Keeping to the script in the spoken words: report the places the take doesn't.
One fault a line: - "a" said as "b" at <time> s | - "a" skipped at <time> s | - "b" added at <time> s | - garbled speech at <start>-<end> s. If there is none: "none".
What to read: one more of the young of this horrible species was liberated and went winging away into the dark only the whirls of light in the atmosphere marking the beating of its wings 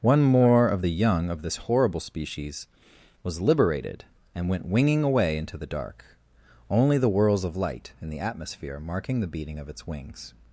none